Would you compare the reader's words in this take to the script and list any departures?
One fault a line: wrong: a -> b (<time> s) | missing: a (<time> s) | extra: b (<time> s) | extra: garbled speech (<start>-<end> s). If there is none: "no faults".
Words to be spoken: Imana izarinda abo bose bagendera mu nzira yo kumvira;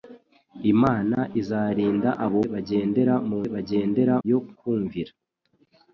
missing: bose (2.4 s)
wrong: nzira -> bagendera (3.5 s)